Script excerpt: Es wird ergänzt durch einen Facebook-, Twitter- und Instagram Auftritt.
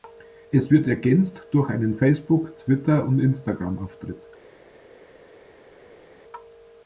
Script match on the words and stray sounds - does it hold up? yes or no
yes